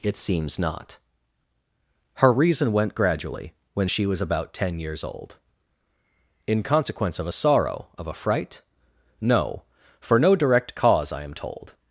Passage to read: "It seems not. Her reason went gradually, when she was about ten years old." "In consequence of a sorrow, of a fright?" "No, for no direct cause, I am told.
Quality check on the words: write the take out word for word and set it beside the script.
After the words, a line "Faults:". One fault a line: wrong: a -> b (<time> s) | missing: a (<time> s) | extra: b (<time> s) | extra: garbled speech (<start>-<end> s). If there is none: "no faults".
"It seems not. Her reason went gradually, when she was about ten years old." "In consequence of a sorrow, of a fright?" "No, for no direct cause, I am told.
Faults:
no faults